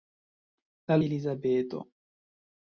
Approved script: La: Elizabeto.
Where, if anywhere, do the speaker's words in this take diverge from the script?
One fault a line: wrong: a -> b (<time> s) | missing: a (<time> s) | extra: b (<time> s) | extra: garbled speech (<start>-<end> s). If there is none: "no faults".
no faults